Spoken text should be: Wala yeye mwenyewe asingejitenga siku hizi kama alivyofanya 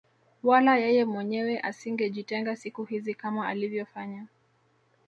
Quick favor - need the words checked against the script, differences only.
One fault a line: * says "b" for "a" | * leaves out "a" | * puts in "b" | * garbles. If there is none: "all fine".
all fine